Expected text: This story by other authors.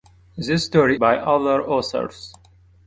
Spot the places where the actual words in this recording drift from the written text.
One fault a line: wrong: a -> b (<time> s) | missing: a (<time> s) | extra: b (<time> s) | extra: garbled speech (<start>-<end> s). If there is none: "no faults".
no faults